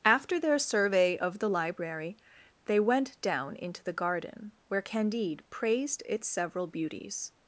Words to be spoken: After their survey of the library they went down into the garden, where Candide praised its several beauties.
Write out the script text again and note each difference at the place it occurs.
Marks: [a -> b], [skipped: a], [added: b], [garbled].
After their survey of the library they went down into the garden, where Candide praised its several beauties.